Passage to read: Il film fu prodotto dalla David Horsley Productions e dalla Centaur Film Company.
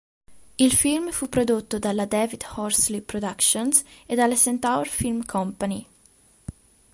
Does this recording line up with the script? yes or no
yes